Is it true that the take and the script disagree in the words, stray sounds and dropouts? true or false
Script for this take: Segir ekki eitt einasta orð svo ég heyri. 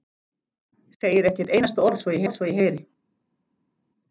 true